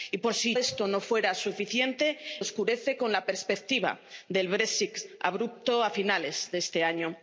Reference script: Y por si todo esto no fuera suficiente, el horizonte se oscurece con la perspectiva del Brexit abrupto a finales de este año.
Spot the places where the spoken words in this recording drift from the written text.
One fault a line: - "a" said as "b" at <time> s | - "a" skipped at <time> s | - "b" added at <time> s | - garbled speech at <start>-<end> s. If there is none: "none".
- "todo" skipped at 0.6 s
- "el horizonte se" skipped at 2.2 s